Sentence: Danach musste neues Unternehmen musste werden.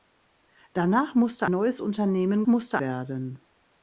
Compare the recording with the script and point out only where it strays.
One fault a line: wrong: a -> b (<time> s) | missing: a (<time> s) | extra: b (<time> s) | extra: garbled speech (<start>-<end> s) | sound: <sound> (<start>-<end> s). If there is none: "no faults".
no faults